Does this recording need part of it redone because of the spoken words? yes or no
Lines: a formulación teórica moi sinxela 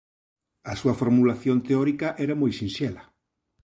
yes